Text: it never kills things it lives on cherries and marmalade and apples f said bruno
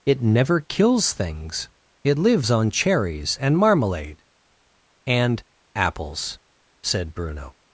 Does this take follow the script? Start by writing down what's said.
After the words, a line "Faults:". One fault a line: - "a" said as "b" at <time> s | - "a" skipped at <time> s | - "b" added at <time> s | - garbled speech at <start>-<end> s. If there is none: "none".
it never kills things it lives on cherries and marmalade and apples said bruno
Faults:
- "f" skipped at 6.4 s